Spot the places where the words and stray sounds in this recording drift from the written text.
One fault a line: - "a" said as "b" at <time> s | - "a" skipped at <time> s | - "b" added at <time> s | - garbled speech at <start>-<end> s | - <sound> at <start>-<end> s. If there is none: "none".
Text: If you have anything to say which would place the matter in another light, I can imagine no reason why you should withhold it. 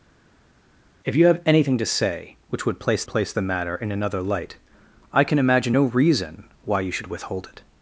- "place" added at 3.1 s